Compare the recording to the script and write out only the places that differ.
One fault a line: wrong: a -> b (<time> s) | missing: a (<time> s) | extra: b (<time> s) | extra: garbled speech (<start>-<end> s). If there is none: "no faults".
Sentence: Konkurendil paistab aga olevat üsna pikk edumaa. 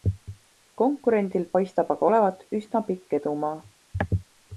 no faults